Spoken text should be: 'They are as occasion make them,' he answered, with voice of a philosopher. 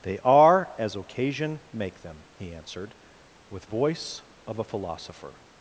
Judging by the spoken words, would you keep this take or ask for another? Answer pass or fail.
pass